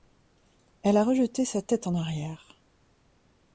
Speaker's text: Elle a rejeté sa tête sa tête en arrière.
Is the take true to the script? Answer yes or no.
no